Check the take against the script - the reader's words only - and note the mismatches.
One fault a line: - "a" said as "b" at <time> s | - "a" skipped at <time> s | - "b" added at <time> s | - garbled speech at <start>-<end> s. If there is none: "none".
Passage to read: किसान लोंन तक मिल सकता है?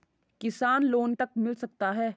none